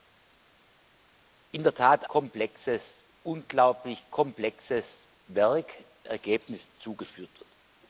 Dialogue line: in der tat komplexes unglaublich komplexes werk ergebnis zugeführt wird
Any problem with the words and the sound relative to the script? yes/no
no